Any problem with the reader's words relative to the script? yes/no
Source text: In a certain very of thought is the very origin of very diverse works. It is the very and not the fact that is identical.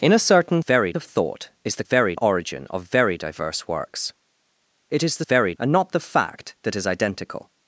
no